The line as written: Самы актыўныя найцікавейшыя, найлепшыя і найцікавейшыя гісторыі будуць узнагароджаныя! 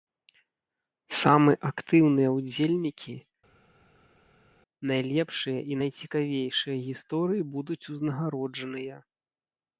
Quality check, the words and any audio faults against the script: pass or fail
fail